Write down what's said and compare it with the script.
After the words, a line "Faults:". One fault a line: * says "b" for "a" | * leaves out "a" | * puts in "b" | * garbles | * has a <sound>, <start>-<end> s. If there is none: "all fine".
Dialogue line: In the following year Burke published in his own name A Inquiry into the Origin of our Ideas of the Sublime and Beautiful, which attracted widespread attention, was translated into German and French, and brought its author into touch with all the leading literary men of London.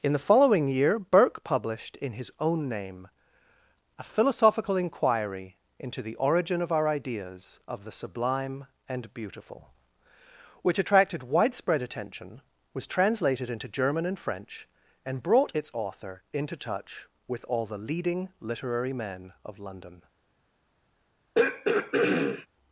In the following year Burke published in his own name A Philosophical Inquiry into the Origin of our Ideas of the Sublime and Beautiful, which attracted widespread attention, was translated into German and French, and brought its author into touch with all the leading literary men of London.
Faults:
* puts in "Philosophical"
* has a throat clearing, 21.3-22.5 s